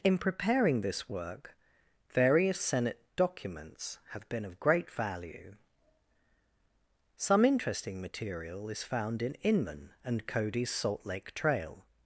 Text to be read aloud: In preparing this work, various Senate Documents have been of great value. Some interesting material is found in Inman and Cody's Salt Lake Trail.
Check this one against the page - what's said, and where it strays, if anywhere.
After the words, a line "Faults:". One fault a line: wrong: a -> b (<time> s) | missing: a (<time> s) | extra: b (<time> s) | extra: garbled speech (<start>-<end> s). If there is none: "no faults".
In preparing this work, various Senate Documents have been of great value. Some interesting material is found in Inman and Cody's Salt Lake Trail.
Faults:
no faults